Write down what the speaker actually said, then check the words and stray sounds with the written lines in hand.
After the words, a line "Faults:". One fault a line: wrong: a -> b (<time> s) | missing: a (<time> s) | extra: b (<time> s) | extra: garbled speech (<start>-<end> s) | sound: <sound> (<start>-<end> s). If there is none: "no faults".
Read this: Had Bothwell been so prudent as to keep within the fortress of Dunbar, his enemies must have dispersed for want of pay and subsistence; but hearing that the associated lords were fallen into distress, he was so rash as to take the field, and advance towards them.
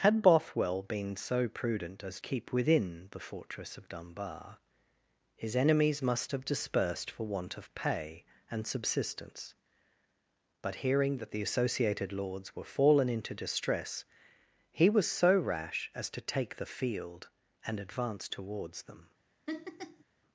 Had Bothwell been so prudent as keep within the fortress of Dunbar, his enemies must have dispersed for want of pay and subsistence; but hearing that the associated lords were fallen into distress, he was so rash as to take the field, and advance towards them.
Faults:
missing: to (2.2 s)
sound: laugh (19.5-20.0 s)